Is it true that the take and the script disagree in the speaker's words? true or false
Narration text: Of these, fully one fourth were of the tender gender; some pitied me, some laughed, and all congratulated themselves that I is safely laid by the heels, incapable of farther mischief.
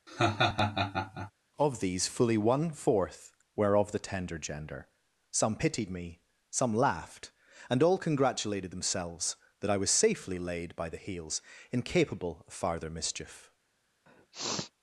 true